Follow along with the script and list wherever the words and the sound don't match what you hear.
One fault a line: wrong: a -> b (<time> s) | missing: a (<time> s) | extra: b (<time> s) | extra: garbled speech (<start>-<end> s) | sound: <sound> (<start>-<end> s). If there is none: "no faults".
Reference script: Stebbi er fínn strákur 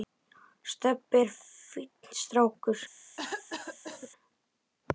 sound: cough (3.2-4.1 s)